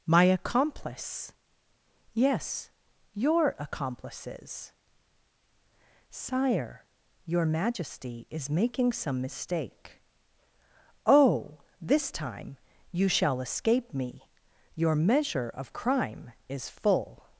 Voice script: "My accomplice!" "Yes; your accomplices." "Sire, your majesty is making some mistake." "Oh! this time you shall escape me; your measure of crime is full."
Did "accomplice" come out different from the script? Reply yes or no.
no